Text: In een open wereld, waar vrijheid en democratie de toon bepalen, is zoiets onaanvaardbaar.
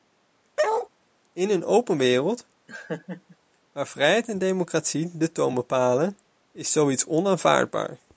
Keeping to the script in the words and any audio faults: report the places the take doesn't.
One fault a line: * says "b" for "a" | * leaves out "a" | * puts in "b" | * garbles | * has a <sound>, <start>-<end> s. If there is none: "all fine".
* has a bark, 0.6-0.9 s
* has a laugh, 2.7-3.4 s